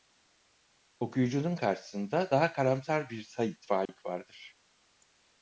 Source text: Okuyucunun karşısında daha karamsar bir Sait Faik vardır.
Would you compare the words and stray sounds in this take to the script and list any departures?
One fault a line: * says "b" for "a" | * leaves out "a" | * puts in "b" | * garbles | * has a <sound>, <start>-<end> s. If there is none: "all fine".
* has a dropout, 3.9-3.9 s